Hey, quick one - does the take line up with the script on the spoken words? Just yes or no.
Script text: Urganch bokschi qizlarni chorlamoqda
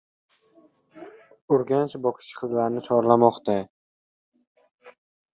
yes